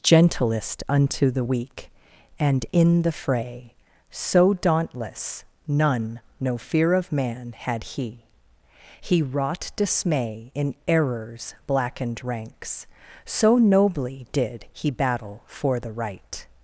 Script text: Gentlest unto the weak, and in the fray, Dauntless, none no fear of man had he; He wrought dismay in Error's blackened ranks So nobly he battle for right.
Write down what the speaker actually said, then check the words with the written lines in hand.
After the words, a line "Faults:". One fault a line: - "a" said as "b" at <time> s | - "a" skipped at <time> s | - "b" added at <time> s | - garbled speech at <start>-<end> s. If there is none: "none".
Gentlest unto the weak, and in the fray, So dauntless, none no fear of man had he; He wrought dismay in Error's blackened ranks So nobly did he battle for the right.
Faults:
- "So" added at 4.1 s
- "did" added at 14.3 s
- "the" added at 15.8 s